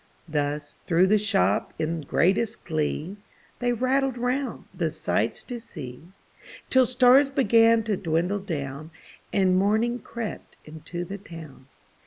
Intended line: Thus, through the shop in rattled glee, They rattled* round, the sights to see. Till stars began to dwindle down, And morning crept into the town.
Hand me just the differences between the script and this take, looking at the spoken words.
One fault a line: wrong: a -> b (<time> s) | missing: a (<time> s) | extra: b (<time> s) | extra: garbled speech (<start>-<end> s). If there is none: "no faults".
wrong: rattled -> greatest (2.0 s)